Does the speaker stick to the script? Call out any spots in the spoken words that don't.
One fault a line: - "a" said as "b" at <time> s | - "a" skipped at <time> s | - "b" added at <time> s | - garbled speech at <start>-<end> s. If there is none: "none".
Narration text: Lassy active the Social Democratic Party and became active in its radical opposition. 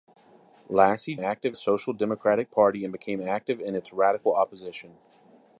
none